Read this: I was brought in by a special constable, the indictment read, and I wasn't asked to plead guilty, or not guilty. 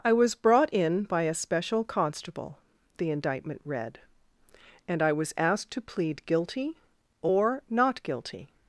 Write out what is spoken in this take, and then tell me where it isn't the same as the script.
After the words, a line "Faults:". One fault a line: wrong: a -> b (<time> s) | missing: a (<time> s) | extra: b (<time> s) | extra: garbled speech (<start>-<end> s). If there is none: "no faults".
I was brought in by a special constable, the indictment read, and I was asked to plead guilty, or not guilty.
Faults:
wrong: wasn't -> was (5.1 s)